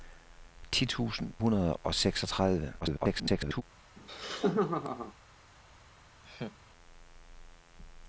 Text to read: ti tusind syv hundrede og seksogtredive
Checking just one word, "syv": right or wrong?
wrong